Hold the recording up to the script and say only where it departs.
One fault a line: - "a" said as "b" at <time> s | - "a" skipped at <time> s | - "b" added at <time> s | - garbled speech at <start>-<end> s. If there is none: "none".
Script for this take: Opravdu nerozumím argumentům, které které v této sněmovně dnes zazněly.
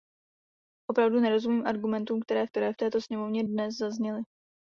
none